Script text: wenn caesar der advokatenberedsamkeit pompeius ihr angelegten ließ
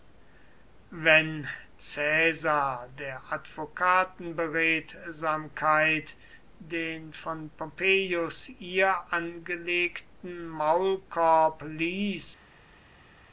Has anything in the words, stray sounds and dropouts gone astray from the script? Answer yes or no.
yes